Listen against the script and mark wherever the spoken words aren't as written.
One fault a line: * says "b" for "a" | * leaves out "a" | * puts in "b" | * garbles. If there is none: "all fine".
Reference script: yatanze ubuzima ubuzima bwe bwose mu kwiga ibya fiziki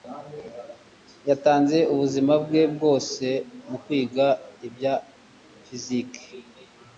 * leaves out "ubuzima"